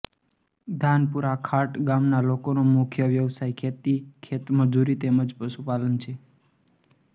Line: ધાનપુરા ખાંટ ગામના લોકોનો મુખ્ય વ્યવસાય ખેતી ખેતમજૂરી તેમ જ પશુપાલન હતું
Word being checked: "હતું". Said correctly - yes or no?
no